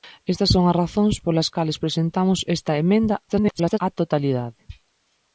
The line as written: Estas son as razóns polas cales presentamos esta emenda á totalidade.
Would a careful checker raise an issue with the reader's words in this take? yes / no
yes